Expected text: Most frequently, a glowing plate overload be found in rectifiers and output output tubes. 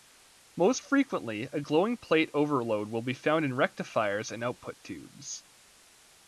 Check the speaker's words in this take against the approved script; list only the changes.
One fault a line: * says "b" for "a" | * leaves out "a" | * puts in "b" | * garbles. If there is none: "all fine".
* puts in "will"
* leaves out "output"